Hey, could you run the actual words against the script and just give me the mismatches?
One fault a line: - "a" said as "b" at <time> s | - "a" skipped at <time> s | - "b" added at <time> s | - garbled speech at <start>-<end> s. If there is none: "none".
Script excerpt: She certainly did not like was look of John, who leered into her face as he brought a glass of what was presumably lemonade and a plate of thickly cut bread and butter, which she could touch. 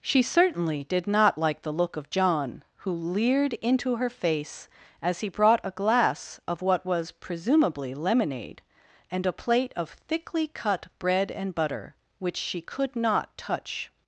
- "was" said as "the" at 1.6 s
- "not" added at 12.9 s